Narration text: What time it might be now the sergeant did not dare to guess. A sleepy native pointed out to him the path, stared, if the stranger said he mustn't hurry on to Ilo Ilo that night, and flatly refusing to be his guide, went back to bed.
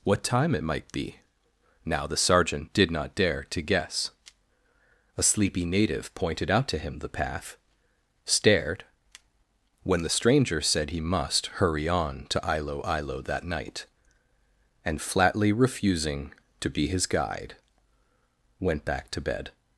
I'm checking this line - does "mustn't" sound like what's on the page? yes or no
no